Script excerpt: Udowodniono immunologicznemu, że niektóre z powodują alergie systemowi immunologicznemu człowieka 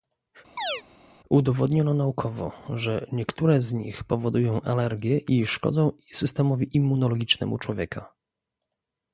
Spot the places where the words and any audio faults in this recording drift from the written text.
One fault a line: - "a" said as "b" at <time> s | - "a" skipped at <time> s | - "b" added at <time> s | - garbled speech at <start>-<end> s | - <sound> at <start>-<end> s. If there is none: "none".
- chirp at 0.6-0.8 s
- "immunologicznemu" said as "naukowo" at 1.9 s
- "nich" added at 3.7 s
- "i szkodzą" added at 5.2 s